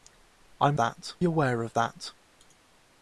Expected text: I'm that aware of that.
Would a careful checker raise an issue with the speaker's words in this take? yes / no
no